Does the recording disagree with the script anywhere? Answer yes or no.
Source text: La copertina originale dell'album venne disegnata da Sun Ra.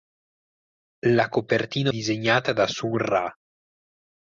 yes